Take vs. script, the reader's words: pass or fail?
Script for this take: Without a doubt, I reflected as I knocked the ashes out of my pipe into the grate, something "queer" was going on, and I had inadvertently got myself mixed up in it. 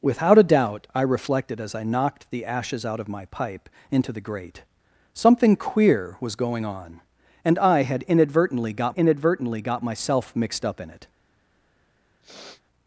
fail